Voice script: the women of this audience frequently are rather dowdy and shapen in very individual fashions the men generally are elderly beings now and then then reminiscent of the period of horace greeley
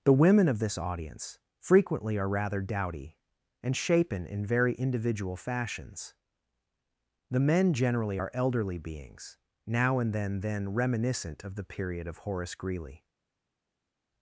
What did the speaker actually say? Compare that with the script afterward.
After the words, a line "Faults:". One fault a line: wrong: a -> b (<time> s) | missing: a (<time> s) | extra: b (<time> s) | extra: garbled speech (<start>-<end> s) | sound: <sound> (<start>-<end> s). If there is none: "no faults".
the women of this audience frequently are rather dowdy and shapen in very individual fashions the men generally are elderly beings now and then then reminiscent of the period of horace greeley
Faults:
no faults